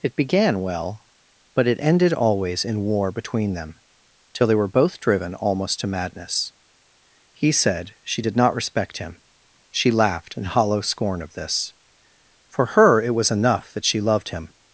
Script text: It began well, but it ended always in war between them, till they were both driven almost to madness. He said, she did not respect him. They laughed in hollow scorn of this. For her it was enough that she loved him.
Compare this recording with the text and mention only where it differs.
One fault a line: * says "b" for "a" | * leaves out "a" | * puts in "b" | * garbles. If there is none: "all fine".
* says "She" for "They"